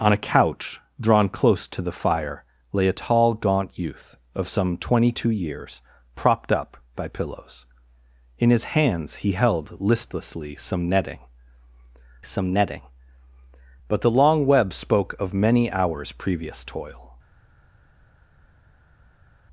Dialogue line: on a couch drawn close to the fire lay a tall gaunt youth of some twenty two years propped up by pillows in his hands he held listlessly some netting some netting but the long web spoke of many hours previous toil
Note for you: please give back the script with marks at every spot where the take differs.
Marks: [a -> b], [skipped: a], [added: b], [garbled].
on a couch drawn close to the fire lay a tall gaunt youth of some twenty two years propped up by pillows in his hands he held listlessly some netting some netting but the long web spoke of many hours previous toil